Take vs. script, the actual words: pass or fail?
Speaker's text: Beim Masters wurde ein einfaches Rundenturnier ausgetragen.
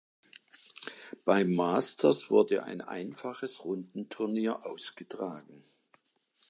pass